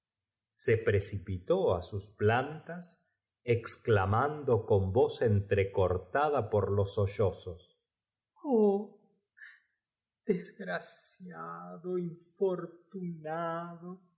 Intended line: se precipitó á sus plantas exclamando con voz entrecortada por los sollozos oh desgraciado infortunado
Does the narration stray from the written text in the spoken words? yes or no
no